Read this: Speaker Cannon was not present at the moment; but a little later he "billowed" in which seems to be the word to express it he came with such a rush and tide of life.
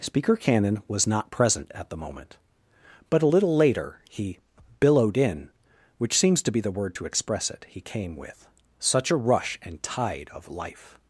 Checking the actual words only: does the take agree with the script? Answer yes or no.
yes